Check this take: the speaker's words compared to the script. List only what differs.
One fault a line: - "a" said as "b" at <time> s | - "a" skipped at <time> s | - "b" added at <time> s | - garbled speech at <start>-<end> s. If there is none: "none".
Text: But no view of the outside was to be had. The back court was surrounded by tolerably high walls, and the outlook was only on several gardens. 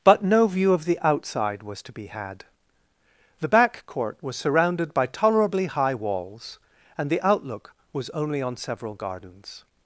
none